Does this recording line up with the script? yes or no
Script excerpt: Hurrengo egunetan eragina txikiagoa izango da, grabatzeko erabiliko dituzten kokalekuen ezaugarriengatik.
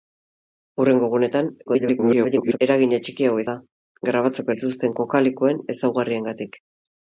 no